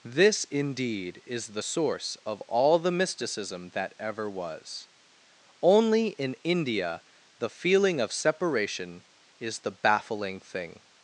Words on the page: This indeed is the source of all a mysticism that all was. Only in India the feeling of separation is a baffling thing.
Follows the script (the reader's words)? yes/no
no